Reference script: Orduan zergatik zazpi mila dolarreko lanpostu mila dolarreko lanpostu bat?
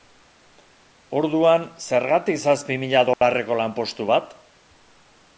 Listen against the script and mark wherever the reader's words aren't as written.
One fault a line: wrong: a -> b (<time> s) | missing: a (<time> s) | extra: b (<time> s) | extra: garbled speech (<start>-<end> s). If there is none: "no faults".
missing: mila dolarreko lanpostu (4.1 s)